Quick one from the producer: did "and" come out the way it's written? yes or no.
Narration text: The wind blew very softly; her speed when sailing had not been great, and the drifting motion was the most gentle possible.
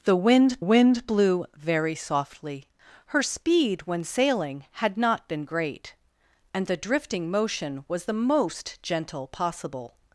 yes